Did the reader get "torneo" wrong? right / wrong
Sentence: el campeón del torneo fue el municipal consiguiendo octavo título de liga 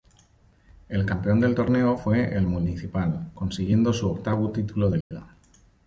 right